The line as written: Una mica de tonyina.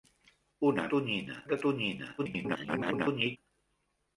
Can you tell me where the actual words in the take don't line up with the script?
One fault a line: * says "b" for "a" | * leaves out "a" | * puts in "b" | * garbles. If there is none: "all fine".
* says "tonyina" for "mica"
* garbles